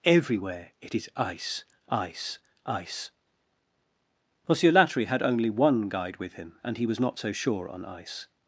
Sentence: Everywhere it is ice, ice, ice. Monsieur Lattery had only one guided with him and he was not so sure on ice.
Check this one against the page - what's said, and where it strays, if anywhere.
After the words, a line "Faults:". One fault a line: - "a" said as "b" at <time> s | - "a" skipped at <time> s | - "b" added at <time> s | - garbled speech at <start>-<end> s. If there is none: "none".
Everywhere it is ice, ice, ice. Monsieur Lattery had only one guide with him and he was not so sure on ice.
Faults:
- "guided" said as "guide" at 5.9 s